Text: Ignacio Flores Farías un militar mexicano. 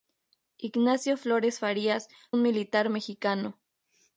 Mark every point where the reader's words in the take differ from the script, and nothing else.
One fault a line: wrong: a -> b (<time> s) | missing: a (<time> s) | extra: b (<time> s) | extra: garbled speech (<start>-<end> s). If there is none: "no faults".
no faults